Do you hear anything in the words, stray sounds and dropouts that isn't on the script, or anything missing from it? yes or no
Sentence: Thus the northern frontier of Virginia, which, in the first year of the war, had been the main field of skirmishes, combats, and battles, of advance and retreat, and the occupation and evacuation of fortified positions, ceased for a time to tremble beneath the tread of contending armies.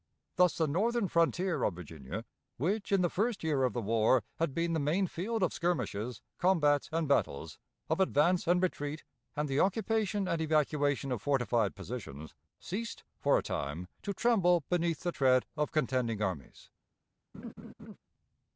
yes